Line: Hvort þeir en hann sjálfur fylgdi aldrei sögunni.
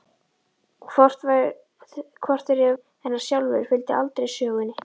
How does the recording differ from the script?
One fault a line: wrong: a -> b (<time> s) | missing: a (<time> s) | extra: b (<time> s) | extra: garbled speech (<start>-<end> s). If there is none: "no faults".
no faults